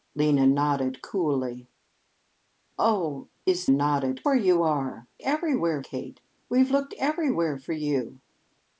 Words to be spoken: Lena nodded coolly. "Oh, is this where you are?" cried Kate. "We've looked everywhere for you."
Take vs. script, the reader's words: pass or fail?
fail